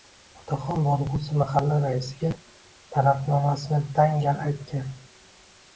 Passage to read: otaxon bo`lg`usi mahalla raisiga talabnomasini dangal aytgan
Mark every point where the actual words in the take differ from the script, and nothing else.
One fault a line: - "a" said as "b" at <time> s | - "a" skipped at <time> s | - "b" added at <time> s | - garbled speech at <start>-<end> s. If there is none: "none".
none